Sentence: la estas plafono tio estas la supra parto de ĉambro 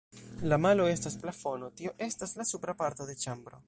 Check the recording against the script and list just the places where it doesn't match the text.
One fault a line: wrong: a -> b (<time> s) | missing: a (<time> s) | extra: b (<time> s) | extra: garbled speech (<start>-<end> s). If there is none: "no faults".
extra: malo (0.7 s)